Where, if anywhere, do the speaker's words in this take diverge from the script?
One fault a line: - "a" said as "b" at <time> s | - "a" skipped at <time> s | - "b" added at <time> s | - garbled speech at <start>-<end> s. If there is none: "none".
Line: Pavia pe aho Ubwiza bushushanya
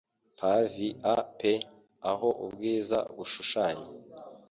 none